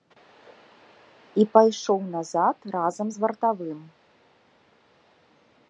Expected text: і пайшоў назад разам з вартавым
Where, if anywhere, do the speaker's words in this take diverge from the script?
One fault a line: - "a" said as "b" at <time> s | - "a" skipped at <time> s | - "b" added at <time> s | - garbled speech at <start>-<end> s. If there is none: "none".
none